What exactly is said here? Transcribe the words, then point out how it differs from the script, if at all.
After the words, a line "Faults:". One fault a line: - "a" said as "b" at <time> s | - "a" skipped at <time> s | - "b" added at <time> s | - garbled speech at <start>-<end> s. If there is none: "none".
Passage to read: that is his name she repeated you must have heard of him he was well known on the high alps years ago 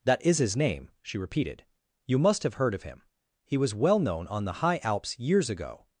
that is his name she repeated you must have heard of him he was well known on the high alps years ago
Faults:
none